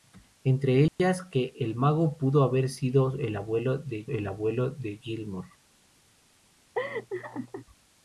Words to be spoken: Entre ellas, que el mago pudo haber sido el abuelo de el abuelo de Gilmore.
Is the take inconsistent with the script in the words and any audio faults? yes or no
yes